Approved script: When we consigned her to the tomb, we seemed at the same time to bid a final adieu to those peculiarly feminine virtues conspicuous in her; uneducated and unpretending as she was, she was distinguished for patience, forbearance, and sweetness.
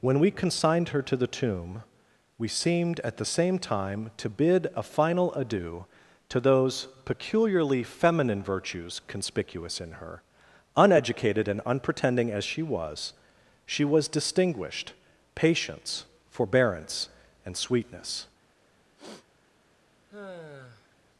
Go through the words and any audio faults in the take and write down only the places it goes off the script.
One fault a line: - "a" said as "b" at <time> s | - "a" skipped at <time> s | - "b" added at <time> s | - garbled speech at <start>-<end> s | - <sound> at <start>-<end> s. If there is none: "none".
- "for" skipped at 14.9 s
- sniff at 19.0-19.3 s
- sigh at 20.1-21.0 s